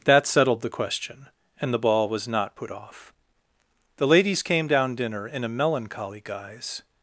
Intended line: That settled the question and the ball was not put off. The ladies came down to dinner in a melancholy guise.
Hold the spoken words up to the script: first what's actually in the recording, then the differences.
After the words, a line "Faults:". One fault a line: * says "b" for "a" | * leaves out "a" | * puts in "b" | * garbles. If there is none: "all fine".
That settled the question and the ball was not put off. The ladies came down dinner in a melancholy guise.
Faults:
* leaves out "to"